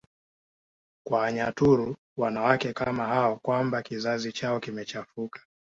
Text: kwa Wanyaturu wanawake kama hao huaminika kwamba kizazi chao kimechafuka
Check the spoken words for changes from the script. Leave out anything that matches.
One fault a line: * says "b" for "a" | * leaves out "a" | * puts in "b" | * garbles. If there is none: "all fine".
* leaves out "huaminika"